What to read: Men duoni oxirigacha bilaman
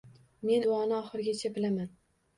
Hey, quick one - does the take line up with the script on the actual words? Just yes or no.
yes